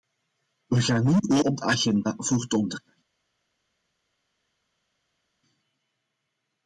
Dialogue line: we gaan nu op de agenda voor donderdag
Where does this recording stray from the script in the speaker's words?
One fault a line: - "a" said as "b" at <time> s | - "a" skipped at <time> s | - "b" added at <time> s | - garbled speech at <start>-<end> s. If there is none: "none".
none